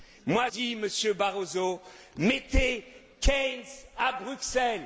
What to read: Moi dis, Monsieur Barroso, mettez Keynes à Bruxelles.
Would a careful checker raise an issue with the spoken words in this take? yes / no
no